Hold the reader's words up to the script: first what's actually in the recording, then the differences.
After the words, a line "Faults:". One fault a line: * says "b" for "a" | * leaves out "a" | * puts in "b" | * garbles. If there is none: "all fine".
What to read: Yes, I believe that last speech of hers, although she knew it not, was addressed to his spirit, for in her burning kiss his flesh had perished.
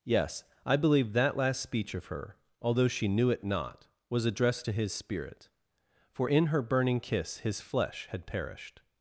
Yes, I believe that last speech of her, although she knew it not, was addressed to his spirit, for in her burning kiss his flesh had perished.
Faults:
* says "her" for "hers"